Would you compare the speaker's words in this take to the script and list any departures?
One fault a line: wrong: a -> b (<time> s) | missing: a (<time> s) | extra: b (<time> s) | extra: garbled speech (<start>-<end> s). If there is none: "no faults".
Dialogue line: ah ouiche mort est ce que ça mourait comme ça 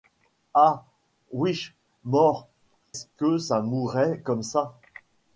missing: est (2.5 s)